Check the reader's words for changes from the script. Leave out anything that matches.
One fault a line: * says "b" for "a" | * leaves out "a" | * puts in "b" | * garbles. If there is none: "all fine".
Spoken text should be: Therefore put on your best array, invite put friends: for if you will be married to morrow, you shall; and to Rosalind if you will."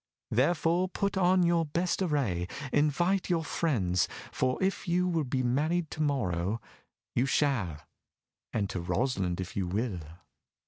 * says "your" for "put"